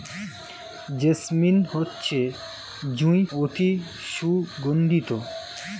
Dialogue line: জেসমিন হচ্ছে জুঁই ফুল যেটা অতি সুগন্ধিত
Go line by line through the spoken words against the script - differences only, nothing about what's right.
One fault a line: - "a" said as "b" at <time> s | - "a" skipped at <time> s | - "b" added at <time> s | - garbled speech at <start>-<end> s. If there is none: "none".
- "ফুল যেটা" skipped at 3.2 s